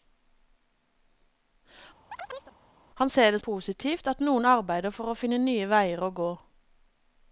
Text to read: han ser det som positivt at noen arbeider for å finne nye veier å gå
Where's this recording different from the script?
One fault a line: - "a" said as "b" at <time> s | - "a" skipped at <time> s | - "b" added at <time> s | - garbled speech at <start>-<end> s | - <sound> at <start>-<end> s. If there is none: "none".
- chirp at 2.1-2.6 s
- "som" skipped at 3.4 s